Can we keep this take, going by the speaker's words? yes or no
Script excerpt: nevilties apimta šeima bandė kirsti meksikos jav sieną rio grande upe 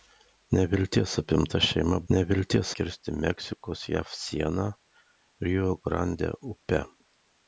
no